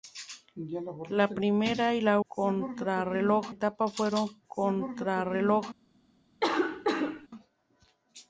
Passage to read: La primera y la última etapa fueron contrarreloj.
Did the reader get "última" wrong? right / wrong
wrong